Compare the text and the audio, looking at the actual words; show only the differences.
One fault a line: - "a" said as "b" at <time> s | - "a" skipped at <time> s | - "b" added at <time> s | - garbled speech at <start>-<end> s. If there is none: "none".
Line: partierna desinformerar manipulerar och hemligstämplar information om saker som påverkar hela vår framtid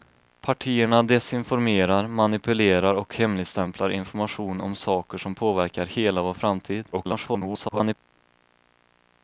- garbled speech at 6.9-7.9 s